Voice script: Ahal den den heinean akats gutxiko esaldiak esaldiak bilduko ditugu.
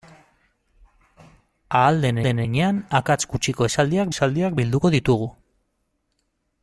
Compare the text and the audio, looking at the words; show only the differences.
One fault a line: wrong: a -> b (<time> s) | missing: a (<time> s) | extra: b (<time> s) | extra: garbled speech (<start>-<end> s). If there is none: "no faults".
no faults